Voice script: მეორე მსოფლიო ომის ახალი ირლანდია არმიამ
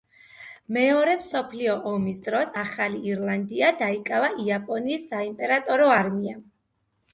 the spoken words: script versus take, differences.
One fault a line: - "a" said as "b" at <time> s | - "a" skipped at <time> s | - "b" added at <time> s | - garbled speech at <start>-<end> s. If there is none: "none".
- "დროს" added at 2.3 s
- "დაიკავა იაპონიის საიმპერატორო" added at 3.8 s